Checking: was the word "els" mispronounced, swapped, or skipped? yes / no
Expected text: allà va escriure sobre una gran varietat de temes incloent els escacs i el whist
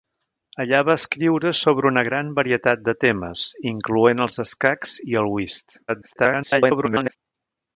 no